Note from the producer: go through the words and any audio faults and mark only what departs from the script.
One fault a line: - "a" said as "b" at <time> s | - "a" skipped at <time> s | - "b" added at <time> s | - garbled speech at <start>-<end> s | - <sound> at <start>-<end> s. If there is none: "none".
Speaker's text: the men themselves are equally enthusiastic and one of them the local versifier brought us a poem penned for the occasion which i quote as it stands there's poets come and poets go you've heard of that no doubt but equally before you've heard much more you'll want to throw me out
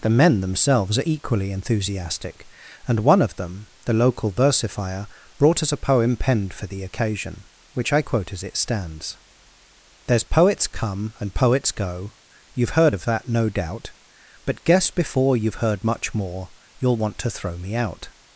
- "equally" said as "guess" at 14.6 s